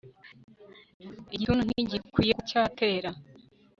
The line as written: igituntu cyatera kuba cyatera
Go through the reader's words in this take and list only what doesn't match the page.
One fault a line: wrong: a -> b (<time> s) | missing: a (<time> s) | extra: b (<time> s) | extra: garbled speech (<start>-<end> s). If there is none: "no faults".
wrong: cyatera -> ntigikwiye (1.6 s)